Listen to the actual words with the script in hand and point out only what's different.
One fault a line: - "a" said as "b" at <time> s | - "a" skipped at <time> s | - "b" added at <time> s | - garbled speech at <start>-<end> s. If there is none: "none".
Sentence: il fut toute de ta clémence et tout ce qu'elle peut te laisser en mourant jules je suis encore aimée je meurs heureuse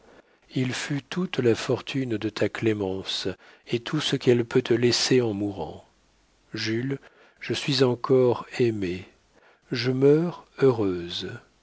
- "la fortune" added at 1.4 s